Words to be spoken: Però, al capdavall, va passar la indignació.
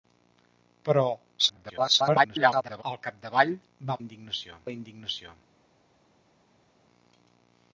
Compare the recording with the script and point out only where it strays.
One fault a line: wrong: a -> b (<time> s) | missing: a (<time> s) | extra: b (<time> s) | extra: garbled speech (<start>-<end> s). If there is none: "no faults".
extra: garbled speech (1.4-2.8 s)
wrong: passar -> indignació (4.0 s)